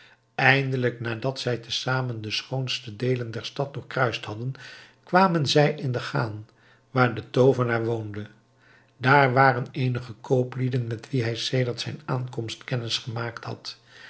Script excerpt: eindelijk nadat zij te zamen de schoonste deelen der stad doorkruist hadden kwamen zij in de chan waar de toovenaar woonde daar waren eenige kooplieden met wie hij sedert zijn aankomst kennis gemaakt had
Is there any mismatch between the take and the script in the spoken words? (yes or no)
no